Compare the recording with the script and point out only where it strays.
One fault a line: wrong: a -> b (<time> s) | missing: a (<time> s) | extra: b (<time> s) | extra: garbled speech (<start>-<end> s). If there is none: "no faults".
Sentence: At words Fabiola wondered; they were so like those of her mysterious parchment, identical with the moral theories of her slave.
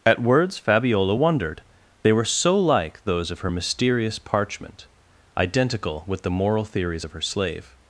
no faults